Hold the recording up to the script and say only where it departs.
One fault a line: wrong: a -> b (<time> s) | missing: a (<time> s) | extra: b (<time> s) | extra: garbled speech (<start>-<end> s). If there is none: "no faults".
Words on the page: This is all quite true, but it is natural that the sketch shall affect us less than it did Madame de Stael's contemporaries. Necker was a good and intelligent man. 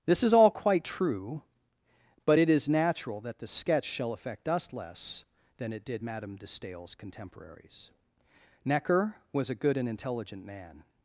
no faults